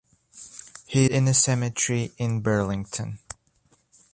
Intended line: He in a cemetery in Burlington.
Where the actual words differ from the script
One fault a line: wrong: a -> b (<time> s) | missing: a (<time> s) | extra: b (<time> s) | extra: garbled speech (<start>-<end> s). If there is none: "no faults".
no faults